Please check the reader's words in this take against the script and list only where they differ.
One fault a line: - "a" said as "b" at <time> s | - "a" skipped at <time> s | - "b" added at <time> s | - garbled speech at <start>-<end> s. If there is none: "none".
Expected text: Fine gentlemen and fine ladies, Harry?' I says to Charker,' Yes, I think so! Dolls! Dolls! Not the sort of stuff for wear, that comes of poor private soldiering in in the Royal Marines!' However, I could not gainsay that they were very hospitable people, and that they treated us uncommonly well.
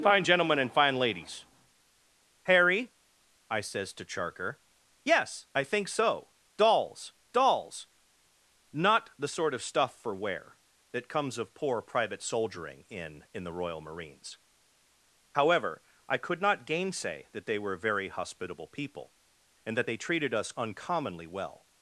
none